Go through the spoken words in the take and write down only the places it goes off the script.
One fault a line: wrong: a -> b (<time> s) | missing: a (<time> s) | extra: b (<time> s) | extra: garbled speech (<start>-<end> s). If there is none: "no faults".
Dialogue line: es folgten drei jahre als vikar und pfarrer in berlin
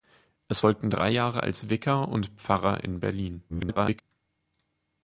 extra: garbled speech (3.5-4.0 s)